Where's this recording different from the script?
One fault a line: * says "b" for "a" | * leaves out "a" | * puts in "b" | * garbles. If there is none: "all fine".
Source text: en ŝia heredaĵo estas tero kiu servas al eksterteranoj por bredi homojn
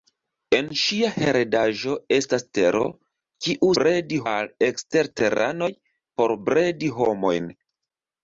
* says "bredi" for "servas"